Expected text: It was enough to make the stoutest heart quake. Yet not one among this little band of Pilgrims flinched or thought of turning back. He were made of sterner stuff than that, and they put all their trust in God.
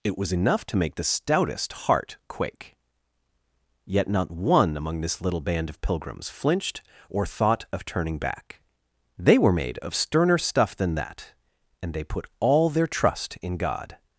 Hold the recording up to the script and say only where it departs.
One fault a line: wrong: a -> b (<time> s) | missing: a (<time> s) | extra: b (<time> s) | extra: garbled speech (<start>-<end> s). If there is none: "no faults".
wrong: He -> They (9.2 s)